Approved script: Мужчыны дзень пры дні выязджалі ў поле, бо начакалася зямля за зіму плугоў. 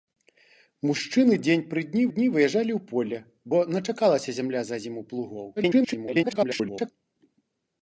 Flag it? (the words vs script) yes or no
yes